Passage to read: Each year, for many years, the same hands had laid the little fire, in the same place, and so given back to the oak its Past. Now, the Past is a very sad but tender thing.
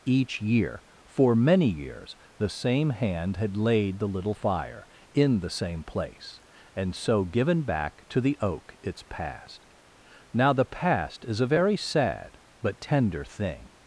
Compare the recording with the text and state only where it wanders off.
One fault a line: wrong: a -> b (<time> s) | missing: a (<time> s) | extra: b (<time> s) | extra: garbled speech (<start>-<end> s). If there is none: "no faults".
wrong: hands -> hand (2.9 s)